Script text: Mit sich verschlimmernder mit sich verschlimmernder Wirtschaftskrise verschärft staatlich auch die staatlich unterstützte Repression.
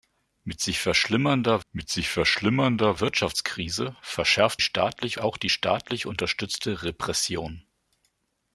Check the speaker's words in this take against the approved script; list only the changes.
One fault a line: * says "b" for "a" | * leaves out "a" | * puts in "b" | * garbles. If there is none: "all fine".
all fine